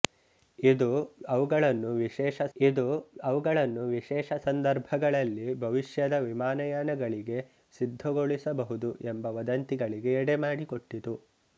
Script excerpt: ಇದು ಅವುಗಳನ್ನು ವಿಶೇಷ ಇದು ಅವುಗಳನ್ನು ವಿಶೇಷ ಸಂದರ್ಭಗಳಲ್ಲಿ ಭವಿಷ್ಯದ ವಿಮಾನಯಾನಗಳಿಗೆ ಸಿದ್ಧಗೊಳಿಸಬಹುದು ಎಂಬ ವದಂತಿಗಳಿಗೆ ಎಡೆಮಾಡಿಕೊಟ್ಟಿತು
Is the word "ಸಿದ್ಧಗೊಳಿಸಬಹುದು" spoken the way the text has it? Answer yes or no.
yes